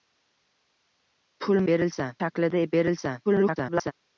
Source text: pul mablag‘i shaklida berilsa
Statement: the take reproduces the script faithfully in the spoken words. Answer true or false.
false